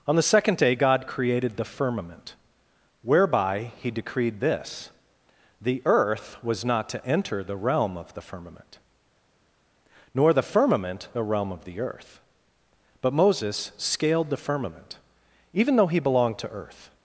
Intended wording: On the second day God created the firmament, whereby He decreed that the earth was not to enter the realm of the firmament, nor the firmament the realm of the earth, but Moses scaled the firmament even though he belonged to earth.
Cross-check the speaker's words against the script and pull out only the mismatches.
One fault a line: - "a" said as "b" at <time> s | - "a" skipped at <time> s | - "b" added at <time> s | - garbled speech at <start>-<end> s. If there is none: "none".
- "that" said as "this" at 4.4 s